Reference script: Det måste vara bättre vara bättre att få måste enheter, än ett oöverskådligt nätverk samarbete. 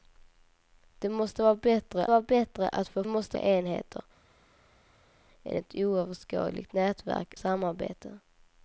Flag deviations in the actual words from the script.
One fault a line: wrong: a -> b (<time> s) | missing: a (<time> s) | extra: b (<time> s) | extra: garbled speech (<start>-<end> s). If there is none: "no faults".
no faults